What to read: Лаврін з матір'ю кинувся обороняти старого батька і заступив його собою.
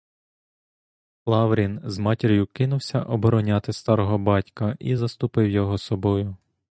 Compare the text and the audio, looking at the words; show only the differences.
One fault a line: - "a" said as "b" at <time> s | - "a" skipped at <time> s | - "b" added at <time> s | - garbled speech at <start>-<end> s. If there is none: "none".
none